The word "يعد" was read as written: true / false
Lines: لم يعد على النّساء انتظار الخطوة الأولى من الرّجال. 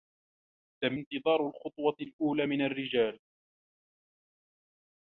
false